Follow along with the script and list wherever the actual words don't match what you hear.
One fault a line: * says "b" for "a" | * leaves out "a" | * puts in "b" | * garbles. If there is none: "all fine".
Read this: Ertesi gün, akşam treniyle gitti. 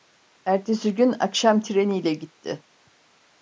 all fine